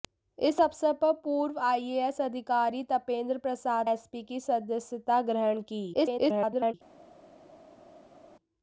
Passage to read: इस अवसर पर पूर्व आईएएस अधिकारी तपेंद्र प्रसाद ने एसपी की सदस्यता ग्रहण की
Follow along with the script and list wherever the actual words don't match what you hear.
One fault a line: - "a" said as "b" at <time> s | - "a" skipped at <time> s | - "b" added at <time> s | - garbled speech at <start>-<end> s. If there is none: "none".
- "ने" skipped at 3.9 s
- garbled speech at 5.9-6.7 s